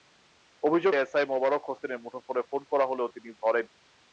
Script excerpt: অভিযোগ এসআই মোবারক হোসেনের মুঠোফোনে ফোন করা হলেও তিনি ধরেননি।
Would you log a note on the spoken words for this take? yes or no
no